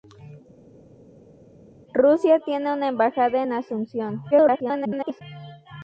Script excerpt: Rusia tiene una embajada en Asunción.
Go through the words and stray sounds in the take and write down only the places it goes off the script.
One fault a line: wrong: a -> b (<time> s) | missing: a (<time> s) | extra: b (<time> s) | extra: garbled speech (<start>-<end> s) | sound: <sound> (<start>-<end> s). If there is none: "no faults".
extra: garbled speech (4.3-5.2 s)